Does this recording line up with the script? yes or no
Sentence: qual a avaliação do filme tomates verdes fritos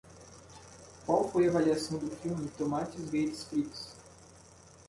no